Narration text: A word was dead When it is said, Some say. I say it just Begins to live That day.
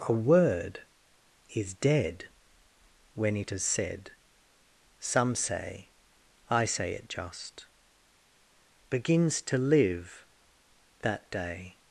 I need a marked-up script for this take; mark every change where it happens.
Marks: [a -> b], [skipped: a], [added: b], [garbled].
A word [was -> is] dead When it is said, Some say. I say it just Begins to live That day.